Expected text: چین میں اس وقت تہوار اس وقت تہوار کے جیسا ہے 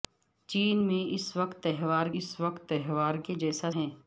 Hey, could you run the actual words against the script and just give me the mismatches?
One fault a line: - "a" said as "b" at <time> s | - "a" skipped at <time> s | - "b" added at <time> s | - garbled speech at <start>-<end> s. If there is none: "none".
none